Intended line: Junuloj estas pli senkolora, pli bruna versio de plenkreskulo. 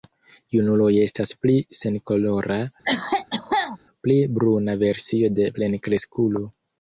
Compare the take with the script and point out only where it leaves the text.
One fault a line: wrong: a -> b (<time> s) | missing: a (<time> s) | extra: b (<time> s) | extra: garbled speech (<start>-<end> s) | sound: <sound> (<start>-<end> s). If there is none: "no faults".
sound: cough (2.8-3.8 s)